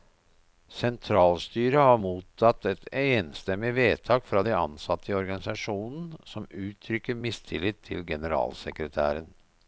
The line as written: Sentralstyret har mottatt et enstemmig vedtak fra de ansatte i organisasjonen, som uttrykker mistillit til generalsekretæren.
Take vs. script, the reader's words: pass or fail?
pass